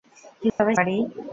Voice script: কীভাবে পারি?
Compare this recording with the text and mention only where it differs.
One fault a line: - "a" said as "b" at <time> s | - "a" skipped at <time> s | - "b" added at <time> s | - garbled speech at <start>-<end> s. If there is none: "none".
none